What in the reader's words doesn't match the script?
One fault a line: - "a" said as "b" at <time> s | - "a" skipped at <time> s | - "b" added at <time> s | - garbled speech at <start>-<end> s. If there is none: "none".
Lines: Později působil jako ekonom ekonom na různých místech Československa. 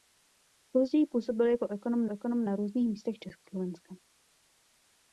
none